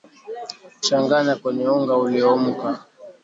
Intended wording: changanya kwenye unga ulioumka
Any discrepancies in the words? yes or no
no